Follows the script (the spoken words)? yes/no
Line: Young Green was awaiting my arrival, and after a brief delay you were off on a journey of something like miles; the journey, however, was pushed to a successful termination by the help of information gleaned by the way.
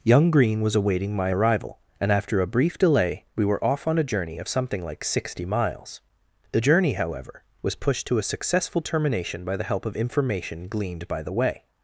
no